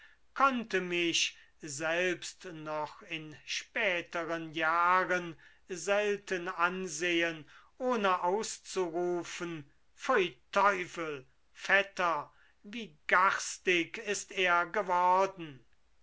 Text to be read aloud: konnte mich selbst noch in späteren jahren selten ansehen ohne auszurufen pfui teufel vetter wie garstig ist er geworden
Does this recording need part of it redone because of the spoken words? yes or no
no